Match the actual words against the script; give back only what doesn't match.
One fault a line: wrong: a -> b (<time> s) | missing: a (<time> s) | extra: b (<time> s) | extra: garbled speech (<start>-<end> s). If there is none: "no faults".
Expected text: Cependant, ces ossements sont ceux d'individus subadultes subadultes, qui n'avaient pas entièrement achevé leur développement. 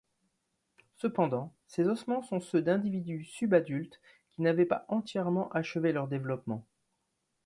missing: subadultes (4.0 s)